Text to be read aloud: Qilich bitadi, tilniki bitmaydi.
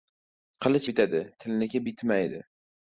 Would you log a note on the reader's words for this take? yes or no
no